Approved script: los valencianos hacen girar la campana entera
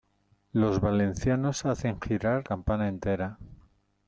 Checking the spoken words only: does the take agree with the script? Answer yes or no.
no